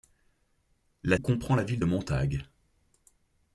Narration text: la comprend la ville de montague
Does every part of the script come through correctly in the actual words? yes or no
yes